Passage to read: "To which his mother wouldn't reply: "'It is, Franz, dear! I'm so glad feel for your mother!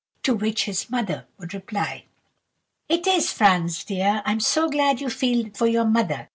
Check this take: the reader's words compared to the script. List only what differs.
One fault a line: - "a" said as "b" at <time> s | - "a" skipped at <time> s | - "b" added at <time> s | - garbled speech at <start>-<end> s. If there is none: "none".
- "wouldn't" said as "would" at 1.4 s
- "you" added at 5.0 s